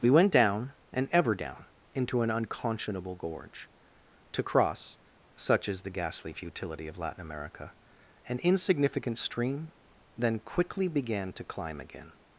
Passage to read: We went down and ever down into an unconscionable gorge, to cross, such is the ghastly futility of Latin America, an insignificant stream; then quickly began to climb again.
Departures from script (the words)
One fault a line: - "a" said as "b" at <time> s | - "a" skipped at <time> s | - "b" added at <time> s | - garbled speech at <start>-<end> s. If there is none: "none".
none